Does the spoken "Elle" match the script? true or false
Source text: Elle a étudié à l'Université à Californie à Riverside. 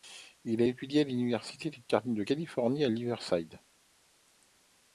false